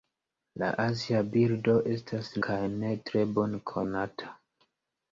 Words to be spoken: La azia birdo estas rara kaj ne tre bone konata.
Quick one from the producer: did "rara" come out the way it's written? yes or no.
no